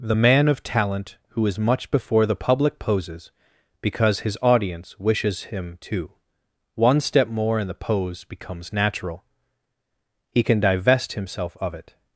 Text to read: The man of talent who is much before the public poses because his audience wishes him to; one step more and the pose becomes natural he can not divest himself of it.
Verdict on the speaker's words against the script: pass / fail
fail